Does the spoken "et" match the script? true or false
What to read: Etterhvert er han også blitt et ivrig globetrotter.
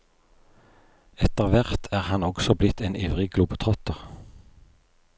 false